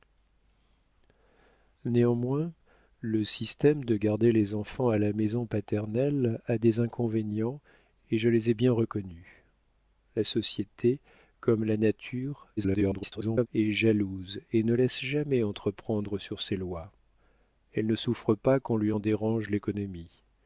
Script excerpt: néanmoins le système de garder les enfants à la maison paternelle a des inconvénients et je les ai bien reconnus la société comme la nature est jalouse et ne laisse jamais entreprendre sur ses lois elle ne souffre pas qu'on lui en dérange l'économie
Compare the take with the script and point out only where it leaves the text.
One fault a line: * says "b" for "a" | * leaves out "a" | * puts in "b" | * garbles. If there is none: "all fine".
* garbles